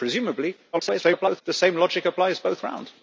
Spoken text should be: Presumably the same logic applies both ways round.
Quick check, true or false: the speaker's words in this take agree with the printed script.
false